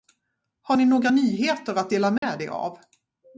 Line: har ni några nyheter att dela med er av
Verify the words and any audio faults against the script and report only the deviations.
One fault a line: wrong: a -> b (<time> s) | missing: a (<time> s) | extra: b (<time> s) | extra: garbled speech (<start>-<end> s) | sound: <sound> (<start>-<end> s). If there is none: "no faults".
sound: dropout (2.2-2.2 s)